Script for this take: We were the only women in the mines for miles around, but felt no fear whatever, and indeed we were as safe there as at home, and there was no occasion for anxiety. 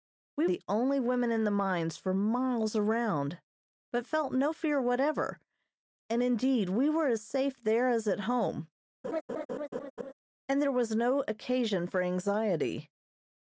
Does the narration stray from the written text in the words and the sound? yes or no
yes